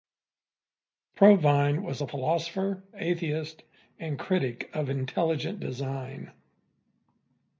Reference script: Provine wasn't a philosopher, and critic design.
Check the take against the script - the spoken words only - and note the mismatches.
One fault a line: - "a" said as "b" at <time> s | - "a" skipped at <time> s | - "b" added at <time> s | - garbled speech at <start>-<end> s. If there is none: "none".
- "wasn't" said as "was" at 1.8 s
- "atheist" added at 3.0 s
- "of intelligent" added at 4.7 s